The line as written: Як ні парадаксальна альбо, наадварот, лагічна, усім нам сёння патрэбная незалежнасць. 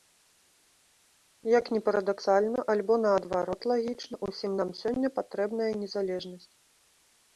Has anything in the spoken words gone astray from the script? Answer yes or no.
no